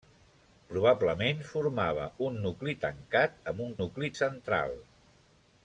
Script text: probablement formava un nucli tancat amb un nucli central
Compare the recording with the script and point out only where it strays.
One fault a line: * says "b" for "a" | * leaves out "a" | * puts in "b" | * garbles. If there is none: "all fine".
all fine